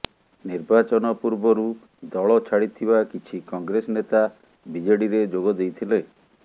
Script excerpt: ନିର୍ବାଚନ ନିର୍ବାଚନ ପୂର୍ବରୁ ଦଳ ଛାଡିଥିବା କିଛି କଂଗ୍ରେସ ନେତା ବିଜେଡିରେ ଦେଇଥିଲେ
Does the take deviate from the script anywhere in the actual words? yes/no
yes